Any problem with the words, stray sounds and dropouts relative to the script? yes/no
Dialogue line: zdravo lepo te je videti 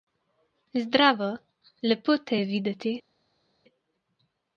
no